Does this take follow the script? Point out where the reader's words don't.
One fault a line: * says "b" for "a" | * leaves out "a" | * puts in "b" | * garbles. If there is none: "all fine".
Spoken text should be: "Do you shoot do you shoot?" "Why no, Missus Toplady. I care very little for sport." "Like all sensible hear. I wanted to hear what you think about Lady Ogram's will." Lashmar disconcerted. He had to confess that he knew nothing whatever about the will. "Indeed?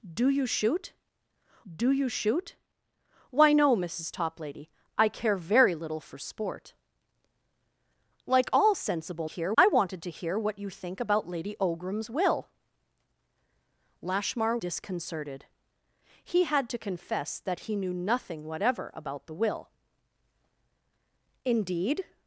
all fine